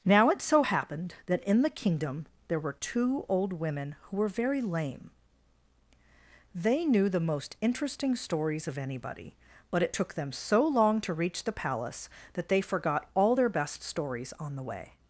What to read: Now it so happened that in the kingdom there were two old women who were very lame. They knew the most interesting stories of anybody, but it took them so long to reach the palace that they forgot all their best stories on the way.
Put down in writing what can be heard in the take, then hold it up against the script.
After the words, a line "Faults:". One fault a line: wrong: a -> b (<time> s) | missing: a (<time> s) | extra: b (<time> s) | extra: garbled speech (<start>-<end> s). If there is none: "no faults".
Now it so happened that in the kingdom there were two old women who were very lame. They knew the most interesting stories of anybody, but it took them so long to reach the palace that they forgot all their best stories on the way.
Faults:
no faults